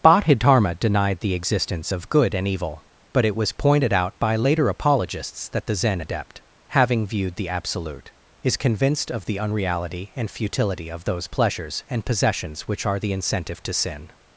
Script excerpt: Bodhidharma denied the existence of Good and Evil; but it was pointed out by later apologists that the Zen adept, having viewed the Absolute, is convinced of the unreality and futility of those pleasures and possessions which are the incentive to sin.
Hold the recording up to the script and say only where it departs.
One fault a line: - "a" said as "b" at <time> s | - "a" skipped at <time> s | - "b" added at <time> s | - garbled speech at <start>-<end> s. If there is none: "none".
none